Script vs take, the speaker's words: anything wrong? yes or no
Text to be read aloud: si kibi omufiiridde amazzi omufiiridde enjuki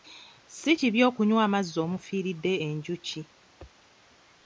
yes